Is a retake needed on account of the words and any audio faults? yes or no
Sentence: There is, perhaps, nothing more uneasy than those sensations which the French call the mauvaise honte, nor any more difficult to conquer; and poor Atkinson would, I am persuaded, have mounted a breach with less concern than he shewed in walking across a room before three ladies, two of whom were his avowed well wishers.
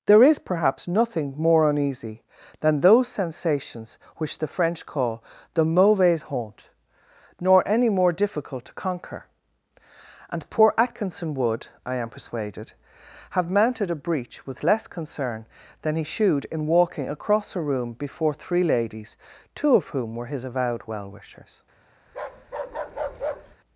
yes